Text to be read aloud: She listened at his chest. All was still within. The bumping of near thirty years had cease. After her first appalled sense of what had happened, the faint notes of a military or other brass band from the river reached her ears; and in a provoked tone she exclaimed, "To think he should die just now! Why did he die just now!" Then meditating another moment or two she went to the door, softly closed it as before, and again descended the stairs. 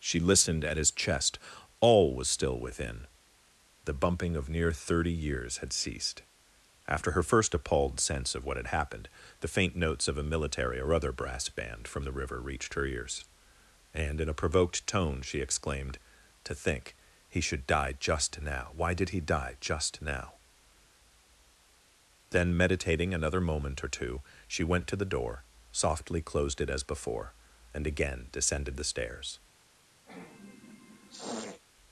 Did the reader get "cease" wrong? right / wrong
wrong